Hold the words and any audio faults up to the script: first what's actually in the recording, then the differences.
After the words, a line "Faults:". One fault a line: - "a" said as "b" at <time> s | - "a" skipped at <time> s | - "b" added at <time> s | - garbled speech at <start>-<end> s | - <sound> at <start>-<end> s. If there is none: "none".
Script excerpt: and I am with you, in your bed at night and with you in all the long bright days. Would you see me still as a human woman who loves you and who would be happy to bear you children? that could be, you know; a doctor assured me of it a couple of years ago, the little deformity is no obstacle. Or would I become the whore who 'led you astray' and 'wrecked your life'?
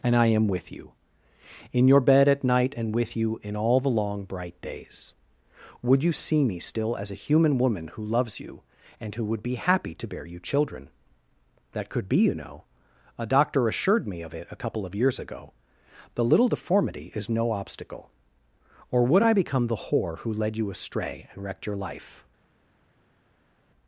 and I am with you, in your bed at night and with you in all the long bright days. Would you see me still as a human woman who loves you and who would be happy to bear you children? that could be, you know; a doctor assured me of it a couple of years ago, the little deformity is no obstacle. Or would I become the whore who 'led you astray' and 'wrecked your life'?
Faults:
none